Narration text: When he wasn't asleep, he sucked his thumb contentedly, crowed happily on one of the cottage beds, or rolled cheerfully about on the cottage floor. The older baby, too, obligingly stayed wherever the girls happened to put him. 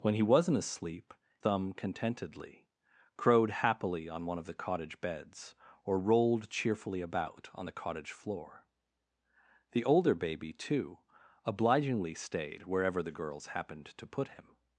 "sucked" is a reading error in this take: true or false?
true